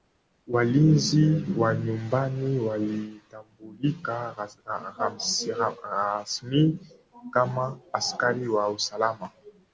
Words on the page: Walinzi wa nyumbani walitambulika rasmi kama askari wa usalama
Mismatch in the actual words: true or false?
false